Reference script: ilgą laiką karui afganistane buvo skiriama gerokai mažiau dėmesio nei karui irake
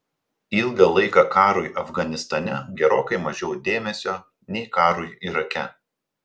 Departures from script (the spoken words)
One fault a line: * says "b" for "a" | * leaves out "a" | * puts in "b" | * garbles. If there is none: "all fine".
* leaves out "buvo skiriama"